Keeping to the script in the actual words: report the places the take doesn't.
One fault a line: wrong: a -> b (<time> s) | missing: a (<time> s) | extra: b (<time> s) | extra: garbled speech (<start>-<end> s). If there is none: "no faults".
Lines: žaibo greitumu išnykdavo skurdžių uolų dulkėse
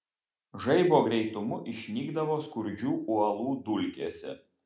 no faults